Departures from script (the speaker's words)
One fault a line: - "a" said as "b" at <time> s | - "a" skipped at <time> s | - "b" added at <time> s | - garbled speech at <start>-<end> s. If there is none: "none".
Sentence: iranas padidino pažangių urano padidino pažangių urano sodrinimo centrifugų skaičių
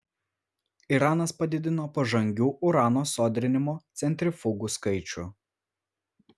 - "padidino pažangių urano" skipped at 3.0 s